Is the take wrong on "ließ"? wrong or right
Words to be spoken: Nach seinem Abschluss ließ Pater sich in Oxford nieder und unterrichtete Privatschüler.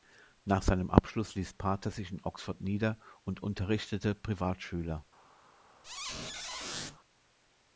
right